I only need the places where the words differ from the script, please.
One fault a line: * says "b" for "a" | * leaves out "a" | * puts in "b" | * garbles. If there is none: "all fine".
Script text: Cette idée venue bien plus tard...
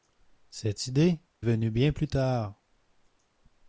all fine